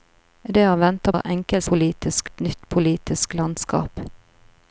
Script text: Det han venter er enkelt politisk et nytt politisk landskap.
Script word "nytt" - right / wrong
right